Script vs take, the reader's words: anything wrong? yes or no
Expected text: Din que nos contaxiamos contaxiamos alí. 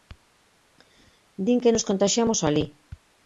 yes